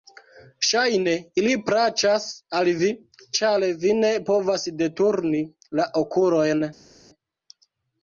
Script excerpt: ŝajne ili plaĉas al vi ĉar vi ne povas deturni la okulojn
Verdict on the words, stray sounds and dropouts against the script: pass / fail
pass